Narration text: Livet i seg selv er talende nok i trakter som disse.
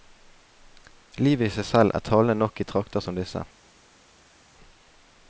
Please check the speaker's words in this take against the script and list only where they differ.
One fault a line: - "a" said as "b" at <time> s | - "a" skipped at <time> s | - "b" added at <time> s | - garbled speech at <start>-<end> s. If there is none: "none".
none